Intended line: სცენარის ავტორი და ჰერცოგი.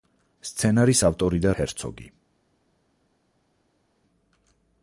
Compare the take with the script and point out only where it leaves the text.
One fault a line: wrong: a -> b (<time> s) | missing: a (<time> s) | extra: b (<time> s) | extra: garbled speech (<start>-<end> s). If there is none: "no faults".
no faults